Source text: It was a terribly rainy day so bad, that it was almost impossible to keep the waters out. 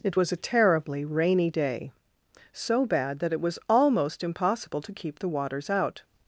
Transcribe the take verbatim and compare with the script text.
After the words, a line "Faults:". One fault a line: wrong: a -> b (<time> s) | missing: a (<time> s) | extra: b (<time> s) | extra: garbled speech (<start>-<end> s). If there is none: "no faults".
It was a terribly rainy day so bad, that it was almost impossible to keep the waters out.
Faults:
no faults